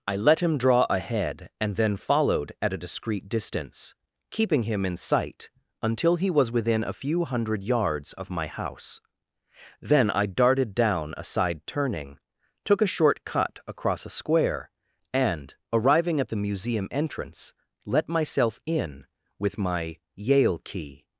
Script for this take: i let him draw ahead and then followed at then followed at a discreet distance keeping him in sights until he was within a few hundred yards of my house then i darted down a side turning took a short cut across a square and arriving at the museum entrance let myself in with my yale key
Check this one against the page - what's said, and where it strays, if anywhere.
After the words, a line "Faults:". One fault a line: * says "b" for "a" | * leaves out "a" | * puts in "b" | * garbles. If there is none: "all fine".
i let him draw ahead and then followed at a discreet distance keeping him in sight until he was within a few hundred yards of my house then i darted down a side turning took a short cut across a square and arriving at the museum entrance let myself in with my yale key
Faults:
* leaves out "then followed at"
* says "sight" for "sights"